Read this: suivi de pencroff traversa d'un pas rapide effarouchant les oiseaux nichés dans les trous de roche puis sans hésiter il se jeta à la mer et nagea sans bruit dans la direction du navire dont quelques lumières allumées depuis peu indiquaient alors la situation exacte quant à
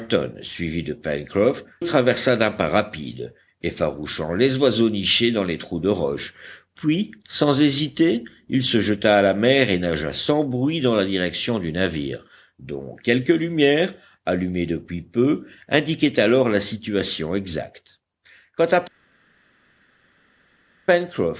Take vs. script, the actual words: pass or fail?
pass